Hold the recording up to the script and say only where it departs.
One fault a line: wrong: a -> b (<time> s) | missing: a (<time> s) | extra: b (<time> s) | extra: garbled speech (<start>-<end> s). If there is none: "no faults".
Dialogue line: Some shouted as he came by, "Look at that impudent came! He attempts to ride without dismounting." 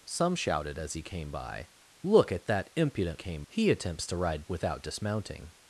no faults